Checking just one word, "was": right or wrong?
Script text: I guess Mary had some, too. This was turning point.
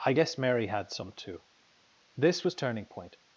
right